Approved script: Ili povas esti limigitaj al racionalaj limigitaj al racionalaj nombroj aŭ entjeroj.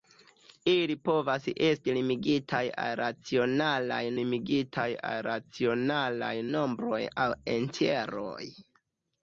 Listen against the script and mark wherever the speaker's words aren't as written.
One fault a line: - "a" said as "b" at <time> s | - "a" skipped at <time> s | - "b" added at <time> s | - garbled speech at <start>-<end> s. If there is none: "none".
none